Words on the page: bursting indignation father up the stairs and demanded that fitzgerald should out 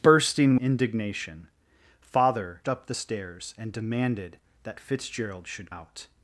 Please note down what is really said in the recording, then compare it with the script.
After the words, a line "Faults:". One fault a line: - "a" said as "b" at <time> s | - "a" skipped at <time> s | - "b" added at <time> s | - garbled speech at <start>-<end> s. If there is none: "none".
bursting indignation father up the stairs and demanded that fitzgerald should out
Faults:
none